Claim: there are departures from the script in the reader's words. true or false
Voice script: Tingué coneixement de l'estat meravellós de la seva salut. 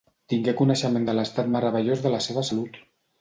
false